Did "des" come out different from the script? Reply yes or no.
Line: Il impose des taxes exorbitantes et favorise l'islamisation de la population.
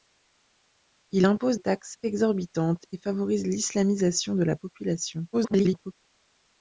yes